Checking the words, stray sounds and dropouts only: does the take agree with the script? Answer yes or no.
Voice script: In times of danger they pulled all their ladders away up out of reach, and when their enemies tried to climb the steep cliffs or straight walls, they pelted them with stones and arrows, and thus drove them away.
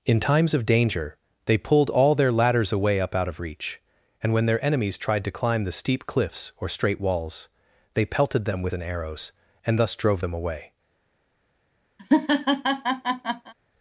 no